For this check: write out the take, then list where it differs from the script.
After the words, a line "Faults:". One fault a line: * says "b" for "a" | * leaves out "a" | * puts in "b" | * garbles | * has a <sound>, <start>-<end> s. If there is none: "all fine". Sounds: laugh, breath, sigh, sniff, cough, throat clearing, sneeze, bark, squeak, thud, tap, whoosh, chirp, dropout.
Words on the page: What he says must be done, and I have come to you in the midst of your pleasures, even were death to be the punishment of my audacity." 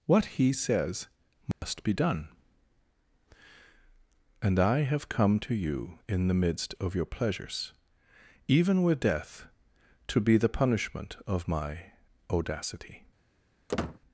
What he says must be done, and I have come to you in the midst of your pleasures, even with death to be the punishment of my audacity."
Faults:
* has a dropout, 1.5-1.6 s
* says "with" for "were"
* has a squeak, 13.7-14.0 s